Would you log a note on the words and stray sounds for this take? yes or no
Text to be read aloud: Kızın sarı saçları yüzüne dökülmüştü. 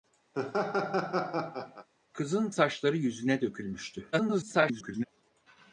yes